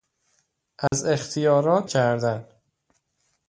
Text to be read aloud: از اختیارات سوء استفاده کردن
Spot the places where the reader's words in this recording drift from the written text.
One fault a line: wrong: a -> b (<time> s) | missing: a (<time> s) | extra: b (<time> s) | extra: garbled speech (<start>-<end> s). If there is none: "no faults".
missing: سوء استفاده (1.9 s)